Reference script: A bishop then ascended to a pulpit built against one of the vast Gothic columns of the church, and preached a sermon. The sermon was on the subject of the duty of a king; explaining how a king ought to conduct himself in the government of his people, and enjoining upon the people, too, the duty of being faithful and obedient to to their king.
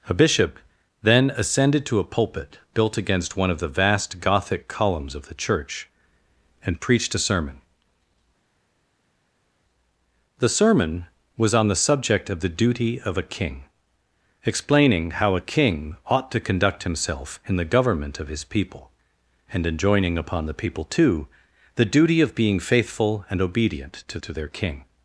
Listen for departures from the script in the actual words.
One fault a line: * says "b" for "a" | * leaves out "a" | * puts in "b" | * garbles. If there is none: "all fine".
all fine